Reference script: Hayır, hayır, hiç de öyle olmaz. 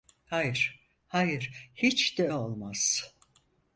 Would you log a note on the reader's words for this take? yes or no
yes